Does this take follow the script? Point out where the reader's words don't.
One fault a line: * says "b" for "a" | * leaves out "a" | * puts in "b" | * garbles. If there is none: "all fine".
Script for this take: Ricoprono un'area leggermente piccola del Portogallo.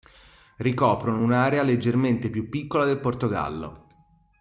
* puts in "più"